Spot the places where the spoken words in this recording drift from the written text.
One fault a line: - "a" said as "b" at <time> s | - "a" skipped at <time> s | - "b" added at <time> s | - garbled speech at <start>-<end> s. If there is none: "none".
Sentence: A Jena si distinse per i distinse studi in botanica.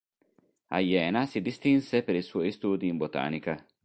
- "distinse" said as "suoi" at 2.2 s